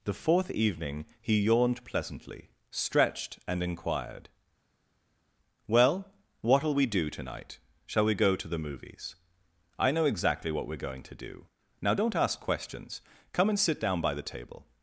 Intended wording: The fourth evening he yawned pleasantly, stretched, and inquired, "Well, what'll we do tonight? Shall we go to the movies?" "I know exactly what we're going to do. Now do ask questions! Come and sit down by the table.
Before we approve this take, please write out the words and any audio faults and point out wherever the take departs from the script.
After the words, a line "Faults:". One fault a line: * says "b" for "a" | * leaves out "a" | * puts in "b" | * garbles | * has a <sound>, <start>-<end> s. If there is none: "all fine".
The fourth evening he yawned pleasantly, stretched, and inquired, "Well, what'll we do tonight? Shall we go to the movies?" "I know exactly what we're going to do. Now don't ask questions! Come and sit down by the table.
Faults:
* says "don't" for "do"